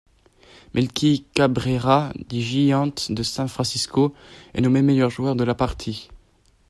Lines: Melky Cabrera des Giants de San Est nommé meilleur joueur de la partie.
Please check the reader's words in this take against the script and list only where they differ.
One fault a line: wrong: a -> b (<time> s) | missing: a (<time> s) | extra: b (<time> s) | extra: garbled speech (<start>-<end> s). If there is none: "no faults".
extra: Francisco (3.5 s)